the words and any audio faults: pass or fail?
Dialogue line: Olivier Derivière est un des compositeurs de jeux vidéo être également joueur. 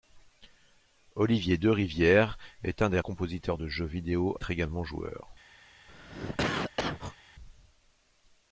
fail